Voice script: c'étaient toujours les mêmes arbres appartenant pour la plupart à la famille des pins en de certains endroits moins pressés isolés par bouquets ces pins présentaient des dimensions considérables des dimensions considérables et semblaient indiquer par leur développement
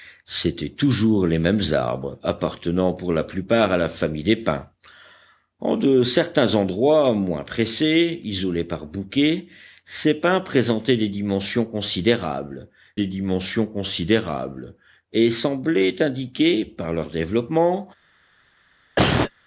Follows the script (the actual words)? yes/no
yes